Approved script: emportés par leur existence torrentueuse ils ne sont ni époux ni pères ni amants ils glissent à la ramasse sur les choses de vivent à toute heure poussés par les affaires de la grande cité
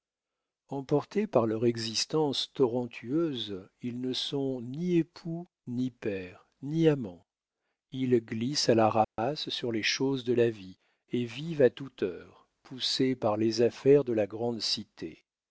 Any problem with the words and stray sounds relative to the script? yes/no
yes